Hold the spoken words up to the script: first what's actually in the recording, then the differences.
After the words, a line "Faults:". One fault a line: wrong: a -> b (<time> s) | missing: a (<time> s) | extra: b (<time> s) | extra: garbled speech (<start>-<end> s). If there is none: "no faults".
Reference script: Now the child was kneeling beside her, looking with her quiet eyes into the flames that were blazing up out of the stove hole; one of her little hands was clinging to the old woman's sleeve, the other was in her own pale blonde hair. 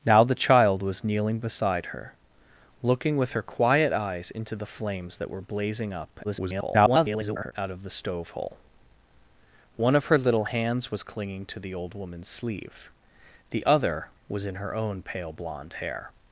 Now the child was kneeling beside her, looking with her quiet eyes into the flames that were blazing up [garbled] out of the stove hole; one of her little hands was clinging to the old woman's sleeve, the other was in her own pale blonde hair.
Faults:
extra: garbled speech (6.2-7.5 s)